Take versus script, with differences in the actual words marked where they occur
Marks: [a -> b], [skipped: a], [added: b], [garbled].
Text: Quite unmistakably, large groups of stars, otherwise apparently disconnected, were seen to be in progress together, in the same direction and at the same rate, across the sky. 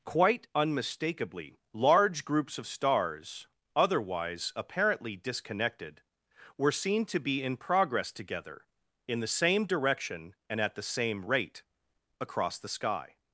Quite unmistakably, large groups of stars, otherwise apparently disconnected, were seen to be in progress together, in the same direction and at the same rate, across the sky.